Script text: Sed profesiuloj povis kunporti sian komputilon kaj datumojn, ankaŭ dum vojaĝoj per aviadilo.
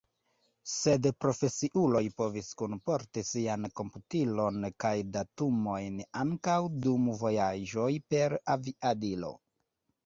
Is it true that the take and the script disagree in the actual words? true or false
false